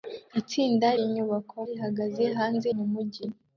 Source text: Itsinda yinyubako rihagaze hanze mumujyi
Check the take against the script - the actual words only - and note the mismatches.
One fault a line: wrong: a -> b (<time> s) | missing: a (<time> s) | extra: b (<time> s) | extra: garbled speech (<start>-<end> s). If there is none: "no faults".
no faults